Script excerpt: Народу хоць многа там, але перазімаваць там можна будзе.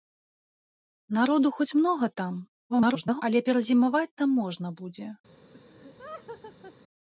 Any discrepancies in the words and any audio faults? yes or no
yes